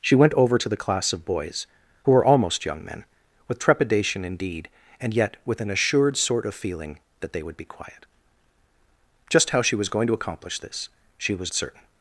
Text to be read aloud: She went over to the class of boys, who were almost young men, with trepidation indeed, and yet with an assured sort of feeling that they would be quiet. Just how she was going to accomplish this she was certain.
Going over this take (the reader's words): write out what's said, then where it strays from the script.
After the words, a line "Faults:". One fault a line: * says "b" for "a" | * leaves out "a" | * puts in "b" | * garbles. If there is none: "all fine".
She went over to the class of boys, who were almost young men, with trepidation indeed, and yet with an assured sort of feeling that they would be quiet. Just how she was going to accomplish this she was certain.
Faults:
all fine